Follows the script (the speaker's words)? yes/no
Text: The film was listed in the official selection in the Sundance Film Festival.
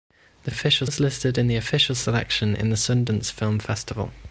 no